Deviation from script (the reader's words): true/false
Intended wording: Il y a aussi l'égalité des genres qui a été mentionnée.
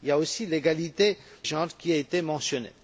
true